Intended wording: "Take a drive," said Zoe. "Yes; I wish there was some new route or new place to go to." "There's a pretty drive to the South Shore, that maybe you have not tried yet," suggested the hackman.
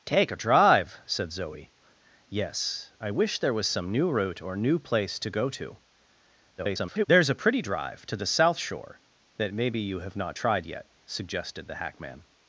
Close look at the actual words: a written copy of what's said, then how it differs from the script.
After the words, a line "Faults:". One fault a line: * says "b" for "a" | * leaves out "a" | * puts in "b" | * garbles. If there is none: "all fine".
"Take a drive," said Zoe. "Yes; I wish there was some new route or new place to go to." [garbled] "There's a pretty drive to the South Shore, that maybe you have not tried yet," suggested the hackman.
Faults:
* garbles